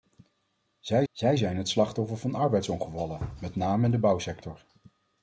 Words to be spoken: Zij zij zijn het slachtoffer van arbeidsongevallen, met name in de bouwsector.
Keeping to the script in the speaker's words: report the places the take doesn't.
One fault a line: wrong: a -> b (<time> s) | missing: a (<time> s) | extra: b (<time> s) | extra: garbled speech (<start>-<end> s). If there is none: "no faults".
no faults